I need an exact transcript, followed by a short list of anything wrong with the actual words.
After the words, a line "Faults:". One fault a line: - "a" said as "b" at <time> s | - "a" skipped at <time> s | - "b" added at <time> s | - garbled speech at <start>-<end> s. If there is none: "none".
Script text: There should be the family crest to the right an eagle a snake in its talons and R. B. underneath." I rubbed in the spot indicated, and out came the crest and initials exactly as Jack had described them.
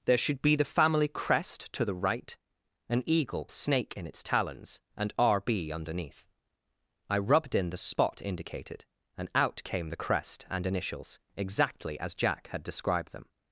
There should be the family crest to the right an eagle a snake in its talons and R. B. underneath." I rubbed in the spot indicated, and out came the crest and initials exactly as Jack had described them.
Faults:
none